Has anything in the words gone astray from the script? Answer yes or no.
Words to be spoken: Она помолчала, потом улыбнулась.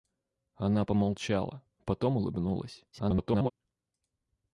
yes